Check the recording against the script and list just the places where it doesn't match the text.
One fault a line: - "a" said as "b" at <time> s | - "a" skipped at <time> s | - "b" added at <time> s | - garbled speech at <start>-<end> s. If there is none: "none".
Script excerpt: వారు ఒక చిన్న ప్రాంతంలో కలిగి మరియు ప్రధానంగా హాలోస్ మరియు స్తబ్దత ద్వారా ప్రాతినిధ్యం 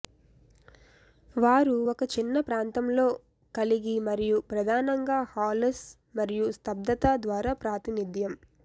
none